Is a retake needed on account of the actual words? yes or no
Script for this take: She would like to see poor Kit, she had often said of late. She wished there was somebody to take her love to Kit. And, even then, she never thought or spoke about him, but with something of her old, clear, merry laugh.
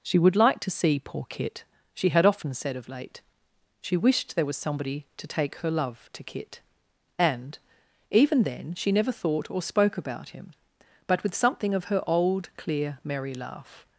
no